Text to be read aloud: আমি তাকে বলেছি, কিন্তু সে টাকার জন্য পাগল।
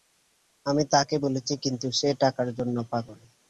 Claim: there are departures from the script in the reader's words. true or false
false